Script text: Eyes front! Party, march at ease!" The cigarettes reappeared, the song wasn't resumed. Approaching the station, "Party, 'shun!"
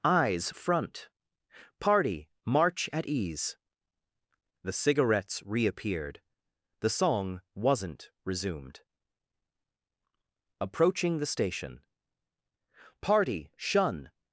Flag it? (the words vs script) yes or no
no